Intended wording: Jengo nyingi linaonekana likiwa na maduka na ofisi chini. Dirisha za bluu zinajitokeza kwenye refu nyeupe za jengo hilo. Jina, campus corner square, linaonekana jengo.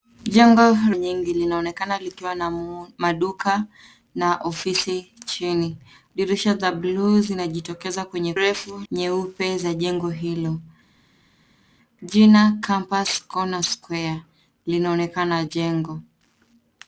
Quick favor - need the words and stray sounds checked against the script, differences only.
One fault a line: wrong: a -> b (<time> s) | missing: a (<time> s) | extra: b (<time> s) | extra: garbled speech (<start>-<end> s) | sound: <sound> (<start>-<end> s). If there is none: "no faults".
no faults